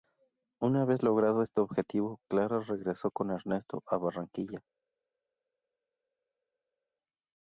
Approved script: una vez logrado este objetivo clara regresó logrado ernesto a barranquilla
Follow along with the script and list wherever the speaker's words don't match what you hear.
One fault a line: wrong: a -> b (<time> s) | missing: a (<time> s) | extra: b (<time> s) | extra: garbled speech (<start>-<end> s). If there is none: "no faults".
wrong: logrado -> con (3.1 s)